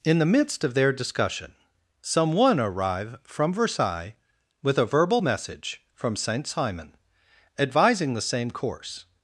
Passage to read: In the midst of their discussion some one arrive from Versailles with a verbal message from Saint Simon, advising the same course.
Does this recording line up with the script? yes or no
yes